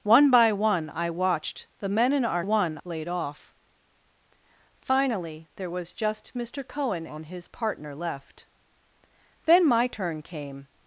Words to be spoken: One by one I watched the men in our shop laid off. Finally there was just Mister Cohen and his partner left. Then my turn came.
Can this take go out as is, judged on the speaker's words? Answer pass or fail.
fail